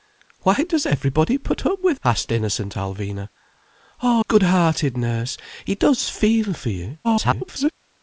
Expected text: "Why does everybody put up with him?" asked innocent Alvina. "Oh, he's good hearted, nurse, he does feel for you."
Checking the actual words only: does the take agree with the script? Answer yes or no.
no